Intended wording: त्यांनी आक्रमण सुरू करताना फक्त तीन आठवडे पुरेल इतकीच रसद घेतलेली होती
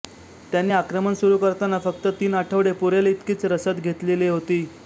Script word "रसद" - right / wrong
right